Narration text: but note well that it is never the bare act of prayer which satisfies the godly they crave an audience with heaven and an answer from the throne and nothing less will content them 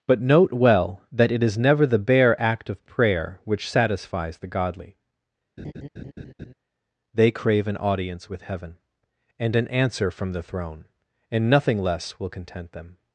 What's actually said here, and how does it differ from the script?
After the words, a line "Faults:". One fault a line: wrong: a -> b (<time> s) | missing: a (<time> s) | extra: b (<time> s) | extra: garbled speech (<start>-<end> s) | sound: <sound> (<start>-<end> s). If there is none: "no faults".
but note well that it is never the bare act of prayer which satisfies the godly they crave an audience with heaven and an answer from the throne and nothing less will content them
Faults:
sound: laugh (5.6-6.5 s)